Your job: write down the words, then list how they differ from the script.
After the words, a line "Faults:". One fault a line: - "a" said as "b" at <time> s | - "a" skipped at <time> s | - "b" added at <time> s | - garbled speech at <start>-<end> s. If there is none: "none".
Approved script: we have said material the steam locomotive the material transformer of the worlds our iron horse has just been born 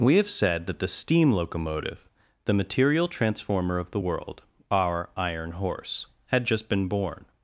we have said that the steam locomotive the material transformer of the world our iron horse had just been born
Faults:
- "material" said as "that" at 0.7 s
- "worlds" said as "world" at 4.0 s
- "has" said as "had" at 6.3 s